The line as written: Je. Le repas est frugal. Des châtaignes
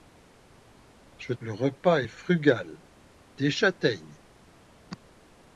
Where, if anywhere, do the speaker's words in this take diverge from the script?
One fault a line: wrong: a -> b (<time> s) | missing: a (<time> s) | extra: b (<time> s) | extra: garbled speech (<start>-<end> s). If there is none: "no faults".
no faults